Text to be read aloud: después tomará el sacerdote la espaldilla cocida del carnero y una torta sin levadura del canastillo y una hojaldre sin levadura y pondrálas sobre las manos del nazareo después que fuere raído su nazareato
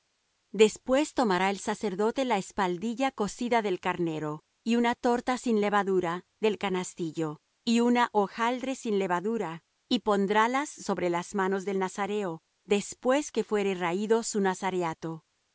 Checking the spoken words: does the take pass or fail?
pass